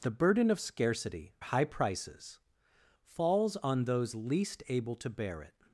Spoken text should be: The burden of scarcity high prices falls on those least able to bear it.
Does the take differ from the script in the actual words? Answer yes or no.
no